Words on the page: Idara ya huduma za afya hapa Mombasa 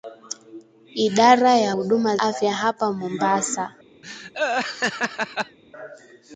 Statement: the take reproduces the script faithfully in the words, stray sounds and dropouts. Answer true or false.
false